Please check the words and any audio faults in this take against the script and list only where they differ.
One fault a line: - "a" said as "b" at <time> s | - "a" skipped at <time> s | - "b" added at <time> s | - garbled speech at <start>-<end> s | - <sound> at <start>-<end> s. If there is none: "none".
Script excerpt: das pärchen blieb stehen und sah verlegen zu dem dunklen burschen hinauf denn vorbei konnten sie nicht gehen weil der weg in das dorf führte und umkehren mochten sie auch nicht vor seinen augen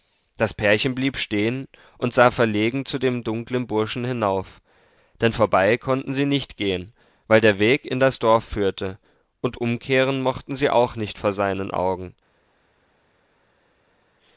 none